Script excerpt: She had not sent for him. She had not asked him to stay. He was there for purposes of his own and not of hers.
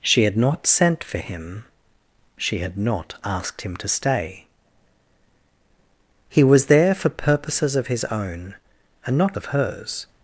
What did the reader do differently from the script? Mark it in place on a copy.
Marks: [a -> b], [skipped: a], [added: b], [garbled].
She had not sent for him. She had not asked him to stay. He was there for purposes of his own and not of hers.